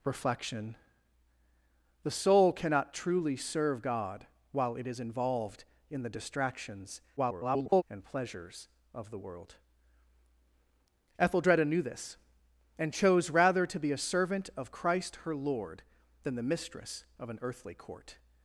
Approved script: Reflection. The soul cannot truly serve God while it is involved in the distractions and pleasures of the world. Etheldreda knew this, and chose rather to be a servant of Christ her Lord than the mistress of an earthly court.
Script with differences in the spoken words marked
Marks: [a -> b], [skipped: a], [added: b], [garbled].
Reflection. The soul cannot truly serve God while it is involved in the distractions [garbled] and pleasures of the world. Etheldreda knew this, and chose rather to be a servant of Christ her Lord than the mistress of an earthly court.